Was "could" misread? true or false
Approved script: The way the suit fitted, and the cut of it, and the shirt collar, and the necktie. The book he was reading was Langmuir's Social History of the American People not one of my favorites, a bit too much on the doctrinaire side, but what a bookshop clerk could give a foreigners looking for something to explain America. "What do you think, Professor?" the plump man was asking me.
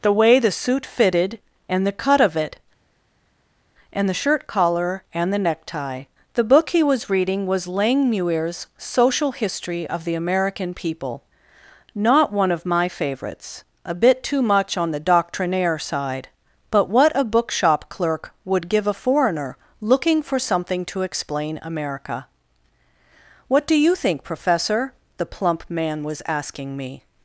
true